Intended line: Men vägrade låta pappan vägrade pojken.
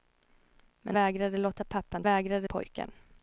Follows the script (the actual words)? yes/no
yes